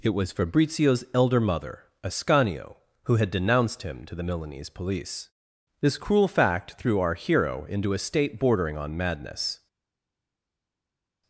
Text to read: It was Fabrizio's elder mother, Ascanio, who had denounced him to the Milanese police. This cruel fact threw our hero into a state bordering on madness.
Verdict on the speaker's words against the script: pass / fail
pass